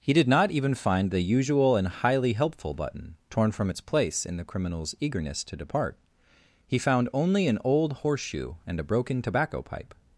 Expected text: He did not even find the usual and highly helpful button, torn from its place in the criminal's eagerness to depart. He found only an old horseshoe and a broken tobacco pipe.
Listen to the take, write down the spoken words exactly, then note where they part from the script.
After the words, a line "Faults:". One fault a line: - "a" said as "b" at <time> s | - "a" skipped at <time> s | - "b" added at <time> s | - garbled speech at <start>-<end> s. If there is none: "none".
He did not even find the usual and highly helpful button, torn from its place in the criminal's eagerness to depart. He found only an old horseshoe and a broken tobacco pipe.
Faults:
none